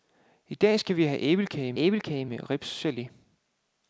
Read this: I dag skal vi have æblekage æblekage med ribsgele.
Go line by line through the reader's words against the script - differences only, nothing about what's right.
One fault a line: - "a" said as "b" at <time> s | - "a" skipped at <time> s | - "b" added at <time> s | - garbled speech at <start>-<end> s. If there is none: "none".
none